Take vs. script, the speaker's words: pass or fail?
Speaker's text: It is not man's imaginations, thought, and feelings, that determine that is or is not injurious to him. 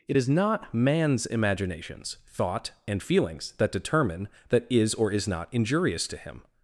pass